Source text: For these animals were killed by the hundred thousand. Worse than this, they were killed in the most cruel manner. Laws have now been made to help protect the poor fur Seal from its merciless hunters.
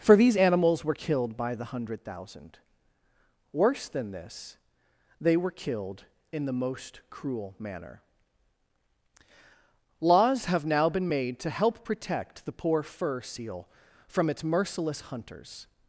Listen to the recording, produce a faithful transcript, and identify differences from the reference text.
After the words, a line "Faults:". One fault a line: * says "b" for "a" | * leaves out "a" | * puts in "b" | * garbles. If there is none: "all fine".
For these animals were killed by the hundred thousand. Worse than this, they were killed in the most cruel manner. Laws have now been made to help protect the poor fur Seal from its merciless hunters.
Faults:
all fine